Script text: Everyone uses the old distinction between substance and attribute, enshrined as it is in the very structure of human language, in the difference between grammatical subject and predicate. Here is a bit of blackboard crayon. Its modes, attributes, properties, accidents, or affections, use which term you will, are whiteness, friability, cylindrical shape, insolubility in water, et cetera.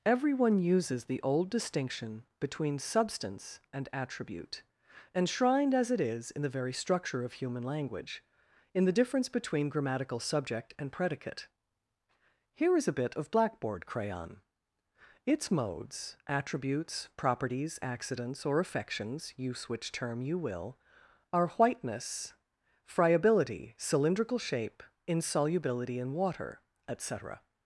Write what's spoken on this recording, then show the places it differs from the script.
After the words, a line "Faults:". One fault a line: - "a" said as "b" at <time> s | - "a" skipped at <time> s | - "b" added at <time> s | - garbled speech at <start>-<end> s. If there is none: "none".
Everyone uses the old distinction between substance and attribute, enshrined as it is in the very structure of human language, in the difference between grammatical subject and predicate. Here is a bit of blackboard crayon. Its modes, attributes, properties, accidents, or affections, use which term you will, are whiteness, friability, cylindrical shape, insolubility in water, et cetera.
Faults:
none